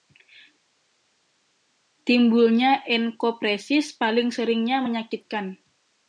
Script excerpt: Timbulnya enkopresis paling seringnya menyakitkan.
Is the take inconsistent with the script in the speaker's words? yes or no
no